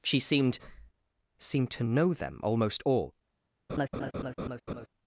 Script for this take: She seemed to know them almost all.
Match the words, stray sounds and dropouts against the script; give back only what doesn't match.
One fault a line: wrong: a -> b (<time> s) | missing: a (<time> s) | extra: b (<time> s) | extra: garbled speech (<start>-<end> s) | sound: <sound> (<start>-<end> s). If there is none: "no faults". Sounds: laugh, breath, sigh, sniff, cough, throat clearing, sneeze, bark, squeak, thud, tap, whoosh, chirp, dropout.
extra: seemed (1.4 s)
sound: laugh (3.7-4.9 s)